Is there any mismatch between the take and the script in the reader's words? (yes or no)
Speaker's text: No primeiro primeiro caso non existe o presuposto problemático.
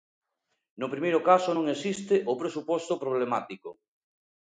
yes